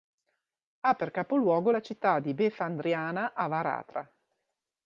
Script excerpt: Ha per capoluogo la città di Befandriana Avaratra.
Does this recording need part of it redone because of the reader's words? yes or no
no